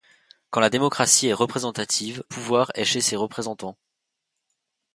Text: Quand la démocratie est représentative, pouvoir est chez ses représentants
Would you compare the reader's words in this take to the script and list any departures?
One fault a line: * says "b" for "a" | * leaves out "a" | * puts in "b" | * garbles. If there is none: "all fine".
all fine